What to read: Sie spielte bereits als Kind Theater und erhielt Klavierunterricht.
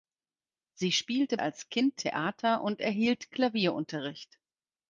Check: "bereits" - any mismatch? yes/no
yes